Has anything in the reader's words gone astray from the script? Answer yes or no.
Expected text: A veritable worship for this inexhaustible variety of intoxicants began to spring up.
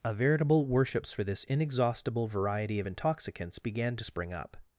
yes